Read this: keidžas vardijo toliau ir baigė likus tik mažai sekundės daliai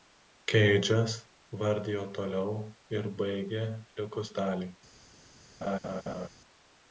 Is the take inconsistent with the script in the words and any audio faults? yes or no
yes